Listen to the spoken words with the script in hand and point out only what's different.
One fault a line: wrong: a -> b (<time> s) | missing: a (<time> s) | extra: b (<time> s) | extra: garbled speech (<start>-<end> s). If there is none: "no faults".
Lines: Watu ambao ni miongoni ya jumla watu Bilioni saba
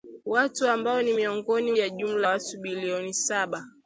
no faults